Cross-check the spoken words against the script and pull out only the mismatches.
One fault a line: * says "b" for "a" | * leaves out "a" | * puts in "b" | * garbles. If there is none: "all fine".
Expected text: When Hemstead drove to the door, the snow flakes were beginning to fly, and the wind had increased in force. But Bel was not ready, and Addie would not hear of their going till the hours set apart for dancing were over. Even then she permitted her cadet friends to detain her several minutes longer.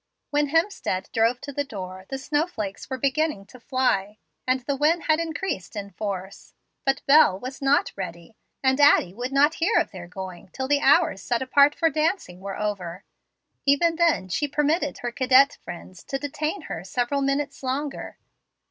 all fine